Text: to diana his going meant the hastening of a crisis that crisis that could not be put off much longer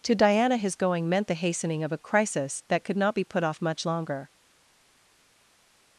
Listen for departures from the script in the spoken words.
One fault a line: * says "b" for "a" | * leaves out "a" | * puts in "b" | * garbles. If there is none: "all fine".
* leaves out "crisis that"